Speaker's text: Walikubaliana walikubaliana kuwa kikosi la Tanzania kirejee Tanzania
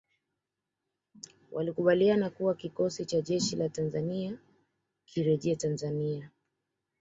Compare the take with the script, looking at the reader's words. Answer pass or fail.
fail